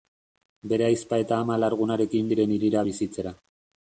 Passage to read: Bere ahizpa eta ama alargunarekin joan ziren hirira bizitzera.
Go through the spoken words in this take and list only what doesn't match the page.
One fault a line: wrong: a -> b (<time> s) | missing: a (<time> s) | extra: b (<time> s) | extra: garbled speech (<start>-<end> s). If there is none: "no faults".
missing: joan (2.3 s)